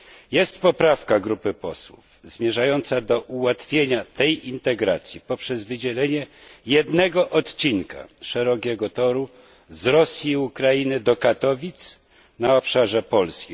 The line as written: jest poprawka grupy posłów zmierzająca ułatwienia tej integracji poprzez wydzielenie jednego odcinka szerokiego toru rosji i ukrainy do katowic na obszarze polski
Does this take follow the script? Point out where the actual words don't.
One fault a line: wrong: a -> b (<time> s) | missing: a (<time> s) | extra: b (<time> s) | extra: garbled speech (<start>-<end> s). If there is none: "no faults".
extra: do (3.0 s)
extra: z (9.7 s)